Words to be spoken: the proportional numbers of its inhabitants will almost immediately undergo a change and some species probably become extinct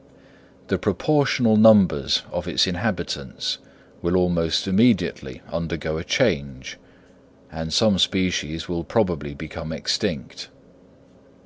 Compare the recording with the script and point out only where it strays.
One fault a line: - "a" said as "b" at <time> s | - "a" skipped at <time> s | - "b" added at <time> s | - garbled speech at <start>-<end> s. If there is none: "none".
- "will" added at 8.7 s